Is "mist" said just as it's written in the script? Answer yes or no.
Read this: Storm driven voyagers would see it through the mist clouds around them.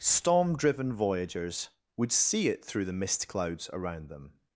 yes